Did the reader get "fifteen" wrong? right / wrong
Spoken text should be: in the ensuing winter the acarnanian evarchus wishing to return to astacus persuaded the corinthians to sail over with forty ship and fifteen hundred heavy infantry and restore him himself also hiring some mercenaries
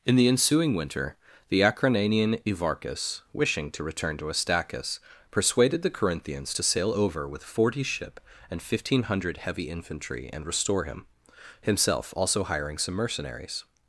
right